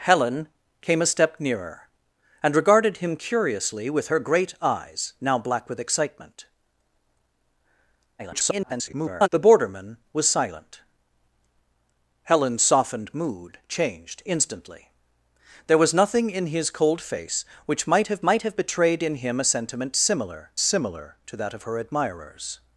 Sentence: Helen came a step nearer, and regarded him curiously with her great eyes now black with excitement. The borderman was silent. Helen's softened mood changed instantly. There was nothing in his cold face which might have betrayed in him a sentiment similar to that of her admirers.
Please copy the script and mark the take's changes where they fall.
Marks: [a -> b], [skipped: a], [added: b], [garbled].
Helen came a step nearer, and regarded him curiously with her great eyes now black with excitement. [garbled] The borderman was silent. Helen's softened mood changed instantly. There was nothing in his cold face which might have [added: might have] betrayed in him a sentiment similar [added: similar] to that of her admirers.